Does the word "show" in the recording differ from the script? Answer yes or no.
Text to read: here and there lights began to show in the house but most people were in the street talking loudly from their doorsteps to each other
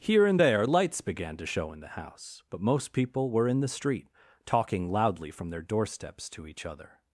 no